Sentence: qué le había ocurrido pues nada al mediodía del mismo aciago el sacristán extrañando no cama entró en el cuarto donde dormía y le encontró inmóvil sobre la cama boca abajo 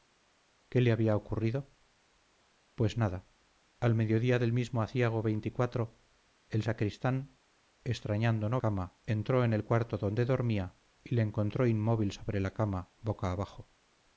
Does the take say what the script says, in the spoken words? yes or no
yes